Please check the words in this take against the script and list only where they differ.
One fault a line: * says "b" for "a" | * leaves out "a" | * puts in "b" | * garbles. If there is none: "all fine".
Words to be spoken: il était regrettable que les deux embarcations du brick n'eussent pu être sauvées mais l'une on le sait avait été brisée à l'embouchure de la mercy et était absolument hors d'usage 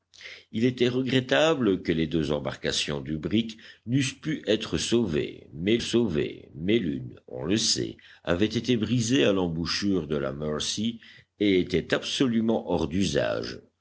* puts in "sauvées mais"